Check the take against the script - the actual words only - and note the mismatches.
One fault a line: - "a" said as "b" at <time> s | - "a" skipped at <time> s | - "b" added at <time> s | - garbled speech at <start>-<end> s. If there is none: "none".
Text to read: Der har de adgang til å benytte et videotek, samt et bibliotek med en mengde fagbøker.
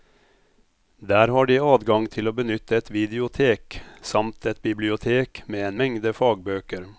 none